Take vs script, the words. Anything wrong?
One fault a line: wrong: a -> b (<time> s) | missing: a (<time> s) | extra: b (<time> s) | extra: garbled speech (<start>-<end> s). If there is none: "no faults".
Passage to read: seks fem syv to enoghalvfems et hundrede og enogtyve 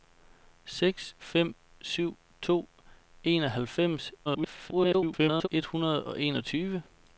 extra: garbled speech (4.2-5.5 s)